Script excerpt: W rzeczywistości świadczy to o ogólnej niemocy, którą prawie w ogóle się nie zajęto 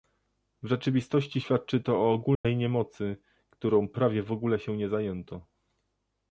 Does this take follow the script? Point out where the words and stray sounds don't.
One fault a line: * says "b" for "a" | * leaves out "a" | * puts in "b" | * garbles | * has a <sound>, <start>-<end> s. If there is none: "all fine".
* has a dropout, 2.3-2.4 s